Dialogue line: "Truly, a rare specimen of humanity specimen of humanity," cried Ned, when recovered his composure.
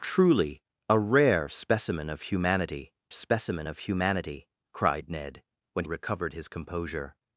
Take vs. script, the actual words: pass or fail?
pass